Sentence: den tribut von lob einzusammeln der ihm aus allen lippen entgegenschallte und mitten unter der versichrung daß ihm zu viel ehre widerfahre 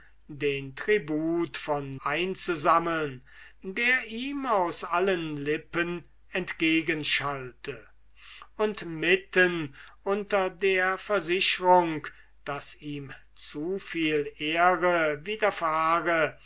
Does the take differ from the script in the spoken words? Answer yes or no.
yes